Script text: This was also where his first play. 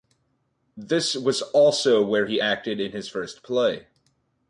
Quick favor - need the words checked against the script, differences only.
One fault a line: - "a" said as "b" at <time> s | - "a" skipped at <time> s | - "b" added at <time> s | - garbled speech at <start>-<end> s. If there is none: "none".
- "he acted in" added at 2.2 s